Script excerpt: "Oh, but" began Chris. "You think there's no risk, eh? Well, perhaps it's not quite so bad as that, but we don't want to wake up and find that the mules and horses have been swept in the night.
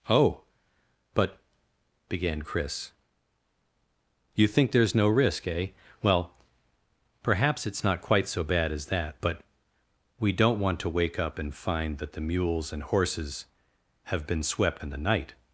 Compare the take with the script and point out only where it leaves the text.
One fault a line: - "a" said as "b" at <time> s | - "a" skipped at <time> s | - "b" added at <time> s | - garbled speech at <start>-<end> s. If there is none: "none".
none